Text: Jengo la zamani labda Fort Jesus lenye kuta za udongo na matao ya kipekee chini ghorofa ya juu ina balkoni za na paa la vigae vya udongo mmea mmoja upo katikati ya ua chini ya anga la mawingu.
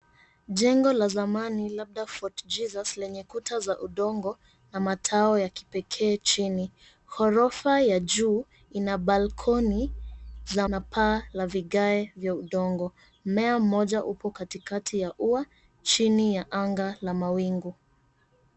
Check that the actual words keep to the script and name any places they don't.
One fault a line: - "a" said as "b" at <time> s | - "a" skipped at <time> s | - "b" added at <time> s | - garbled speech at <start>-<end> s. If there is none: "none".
none